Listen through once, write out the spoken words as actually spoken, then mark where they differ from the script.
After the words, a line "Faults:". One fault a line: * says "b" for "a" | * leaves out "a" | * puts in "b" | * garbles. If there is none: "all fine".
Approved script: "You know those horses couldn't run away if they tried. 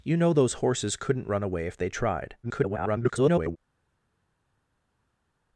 "You know those horses couldn't run away if they tried. [garbled]
Faults:
* garbles